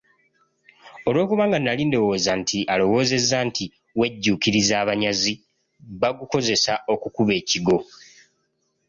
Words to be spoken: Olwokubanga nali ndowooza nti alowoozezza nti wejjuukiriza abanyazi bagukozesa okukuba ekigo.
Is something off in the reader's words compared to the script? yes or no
no